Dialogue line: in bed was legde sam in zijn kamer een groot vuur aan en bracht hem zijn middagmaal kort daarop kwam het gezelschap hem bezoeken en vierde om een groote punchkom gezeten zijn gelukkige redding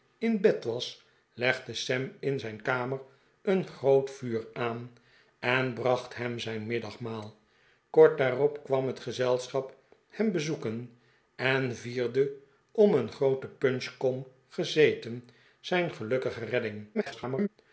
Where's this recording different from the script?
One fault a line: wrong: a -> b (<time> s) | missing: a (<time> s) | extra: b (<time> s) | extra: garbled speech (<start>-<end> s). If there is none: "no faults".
extra: garbled speech (16.9-17.5 s)